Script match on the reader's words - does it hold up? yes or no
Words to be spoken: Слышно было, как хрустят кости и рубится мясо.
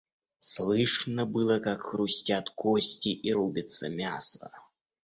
yes